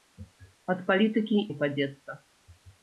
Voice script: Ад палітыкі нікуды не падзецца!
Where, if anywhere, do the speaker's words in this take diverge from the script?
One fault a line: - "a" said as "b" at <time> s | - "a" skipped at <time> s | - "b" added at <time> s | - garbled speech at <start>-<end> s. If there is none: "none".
- "нікуды" skipped at 1.4 s